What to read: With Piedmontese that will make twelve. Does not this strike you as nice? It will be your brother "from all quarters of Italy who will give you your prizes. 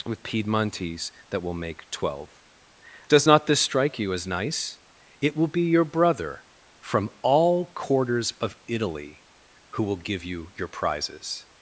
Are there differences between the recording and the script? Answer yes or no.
no